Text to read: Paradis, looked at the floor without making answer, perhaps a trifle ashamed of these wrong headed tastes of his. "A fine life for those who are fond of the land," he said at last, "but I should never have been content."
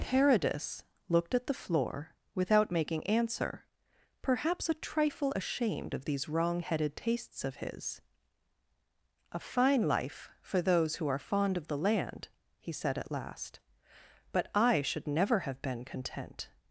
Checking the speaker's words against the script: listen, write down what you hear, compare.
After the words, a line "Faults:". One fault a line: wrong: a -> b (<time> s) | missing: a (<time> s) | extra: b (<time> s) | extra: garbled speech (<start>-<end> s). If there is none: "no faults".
Paradis, looked at the floor without making answer, perhaps a trifle ashamed of these wrong headed tastes of his. "A fine life for those who are fond of the land," he said at last, "but I should never have been content."
Faults:
no faults